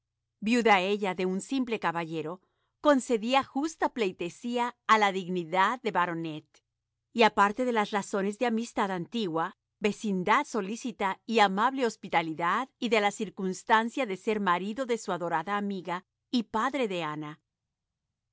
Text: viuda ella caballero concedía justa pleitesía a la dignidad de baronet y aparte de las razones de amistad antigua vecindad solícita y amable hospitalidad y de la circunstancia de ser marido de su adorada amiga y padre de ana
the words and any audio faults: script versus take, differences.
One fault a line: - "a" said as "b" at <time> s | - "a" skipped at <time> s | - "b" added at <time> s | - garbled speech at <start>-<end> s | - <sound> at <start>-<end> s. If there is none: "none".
- "de un simple" added at 1.1 s